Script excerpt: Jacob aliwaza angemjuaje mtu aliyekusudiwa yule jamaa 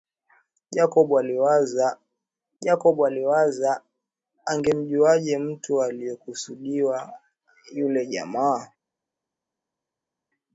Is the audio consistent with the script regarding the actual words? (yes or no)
no